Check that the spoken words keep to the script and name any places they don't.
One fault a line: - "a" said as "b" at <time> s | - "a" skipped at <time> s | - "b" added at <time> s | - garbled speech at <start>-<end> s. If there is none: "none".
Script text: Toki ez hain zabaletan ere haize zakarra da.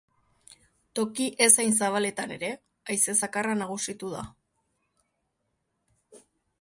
- "nagusitu" added at 3.6 s